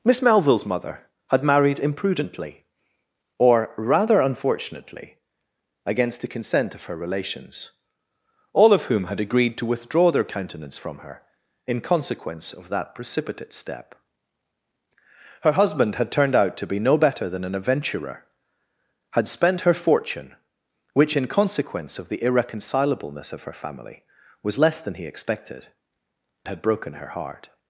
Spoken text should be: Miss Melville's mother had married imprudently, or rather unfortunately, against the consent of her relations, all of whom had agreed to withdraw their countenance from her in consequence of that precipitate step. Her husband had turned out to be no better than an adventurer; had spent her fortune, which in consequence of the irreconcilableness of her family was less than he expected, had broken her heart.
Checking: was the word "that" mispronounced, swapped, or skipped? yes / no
no